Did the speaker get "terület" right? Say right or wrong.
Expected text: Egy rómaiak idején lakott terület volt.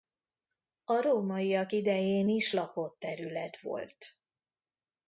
right